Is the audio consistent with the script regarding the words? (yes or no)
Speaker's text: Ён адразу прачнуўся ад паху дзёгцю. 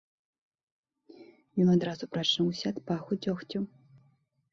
yes